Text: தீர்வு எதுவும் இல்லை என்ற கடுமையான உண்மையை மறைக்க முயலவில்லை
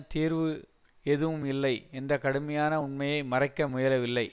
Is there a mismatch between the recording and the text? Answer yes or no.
no